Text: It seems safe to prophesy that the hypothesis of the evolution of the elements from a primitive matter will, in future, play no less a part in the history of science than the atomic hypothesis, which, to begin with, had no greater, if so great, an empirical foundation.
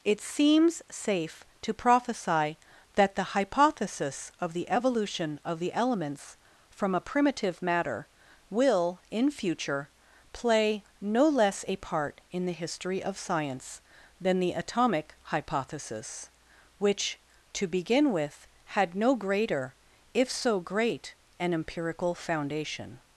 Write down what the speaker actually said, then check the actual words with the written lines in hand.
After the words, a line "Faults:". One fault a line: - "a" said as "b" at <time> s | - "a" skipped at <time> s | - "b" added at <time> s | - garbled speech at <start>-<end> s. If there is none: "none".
It seems safe to prophesy that the hypothesis of the evolution of the elements from a primitive matter will, in future, play no less a part in the history of science than the atomic hypothesis, which, to begin with, had no greater, if so great, an empirical foundation.
Faults:
none